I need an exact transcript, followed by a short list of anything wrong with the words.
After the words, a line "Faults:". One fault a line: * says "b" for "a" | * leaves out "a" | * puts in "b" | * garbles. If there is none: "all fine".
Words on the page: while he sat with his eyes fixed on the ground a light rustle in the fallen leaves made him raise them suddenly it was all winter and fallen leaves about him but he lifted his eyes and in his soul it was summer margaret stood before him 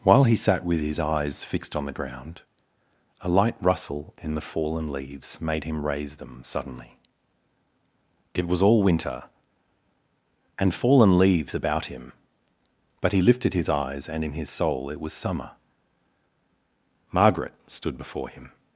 while he sat with his eyes fixed on the ground a light rustle in the fallen leaves made him raise them suddenly it was all winter and fallen leaves about him but he lifted his eyes and in his soul it was summer margaret stood before him
Faults:
all fine